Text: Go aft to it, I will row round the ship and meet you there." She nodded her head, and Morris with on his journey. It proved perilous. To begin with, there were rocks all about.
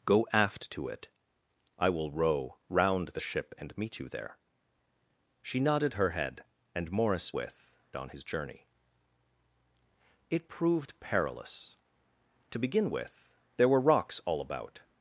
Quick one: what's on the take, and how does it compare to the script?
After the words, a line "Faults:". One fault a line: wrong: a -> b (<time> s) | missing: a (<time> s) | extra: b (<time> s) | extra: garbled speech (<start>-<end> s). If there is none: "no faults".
Go aft to it, I will row round the ship and meet you there." She nodded her head, and Morris with on his journey. It proved perilous. To begin with, there were rocks all about.
Faults:
no faults